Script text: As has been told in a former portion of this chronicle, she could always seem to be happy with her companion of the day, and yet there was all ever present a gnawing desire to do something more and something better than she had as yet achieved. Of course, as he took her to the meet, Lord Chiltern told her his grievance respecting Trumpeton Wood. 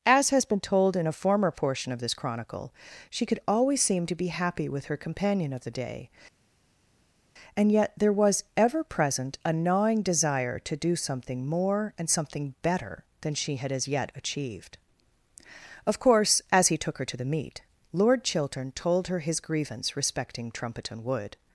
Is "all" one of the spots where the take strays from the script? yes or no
yes